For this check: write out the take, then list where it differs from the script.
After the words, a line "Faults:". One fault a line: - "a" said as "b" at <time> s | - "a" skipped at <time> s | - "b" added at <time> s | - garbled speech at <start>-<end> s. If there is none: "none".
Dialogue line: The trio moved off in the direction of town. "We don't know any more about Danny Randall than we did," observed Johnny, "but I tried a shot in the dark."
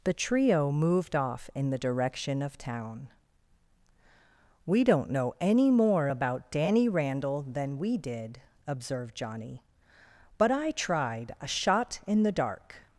The trio moved off in the direction of town. "We don't know any more about Danny Randall than we did," observed Johnny, "but I tried a shot in the dark."
Faults:
none